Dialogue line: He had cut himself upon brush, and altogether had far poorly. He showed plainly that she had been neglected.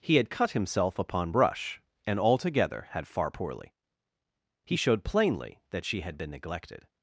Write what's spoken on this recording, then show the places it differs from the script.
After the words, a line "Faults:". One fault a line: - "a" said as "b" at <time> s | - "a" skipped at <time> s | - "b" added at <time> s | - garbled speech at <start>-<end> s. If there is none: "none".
He had cut himself upon brush, and altogether had far poorly. He showed plainly that she had been neglected.
Faults:
none